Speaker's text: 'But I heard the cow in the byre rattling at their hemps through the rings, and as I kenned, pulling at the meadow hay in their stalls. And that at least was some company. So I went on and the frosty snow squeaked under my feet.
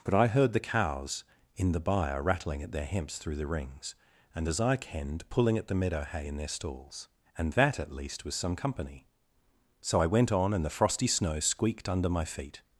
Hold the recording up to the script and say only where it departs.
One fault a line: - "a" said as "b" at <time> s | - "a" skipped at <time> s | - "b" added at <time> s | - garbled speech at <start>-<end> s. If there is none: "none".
- "cow" said as "cows" at 0.6 s